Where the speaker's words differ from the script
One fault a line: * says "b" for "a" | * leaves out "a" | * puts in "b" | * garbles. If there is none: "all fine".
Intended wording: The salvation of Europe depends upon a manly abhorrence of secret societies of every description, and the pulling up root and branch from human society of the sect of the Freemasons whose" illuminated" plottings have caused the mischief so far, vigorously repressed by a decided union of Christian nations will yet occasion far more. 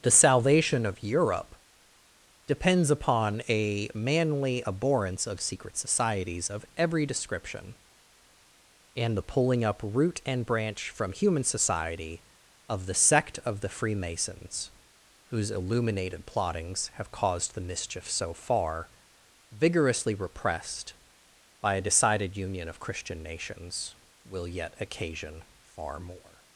all fine